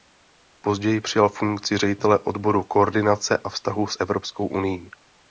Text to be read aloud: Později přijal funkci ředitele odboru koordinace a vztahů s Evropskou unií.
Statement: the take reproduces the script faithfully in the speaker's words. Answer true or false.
true